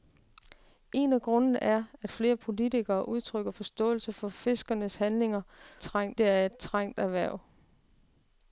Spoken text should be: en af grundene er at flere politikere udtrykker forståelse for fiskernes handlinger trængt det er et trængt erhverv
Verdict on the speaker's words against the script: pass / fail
pass